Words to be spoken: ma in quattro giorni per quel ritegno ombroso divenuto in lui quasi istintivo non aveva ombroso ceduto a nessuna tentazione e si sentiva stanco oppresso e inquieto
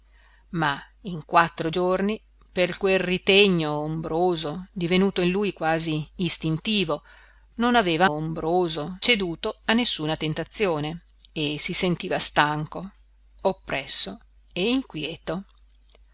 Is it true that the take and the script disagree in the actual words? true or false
false